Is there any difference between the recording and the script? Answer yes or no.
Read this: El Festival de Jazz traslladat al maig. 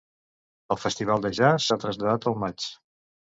yes